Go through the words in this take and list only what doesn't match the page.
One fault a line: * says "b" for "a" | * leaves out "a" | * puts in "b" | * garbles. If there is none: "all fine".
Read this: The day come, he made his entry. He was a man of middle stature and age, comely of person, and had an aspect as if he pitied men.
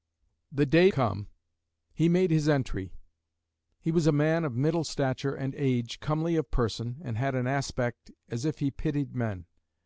all fine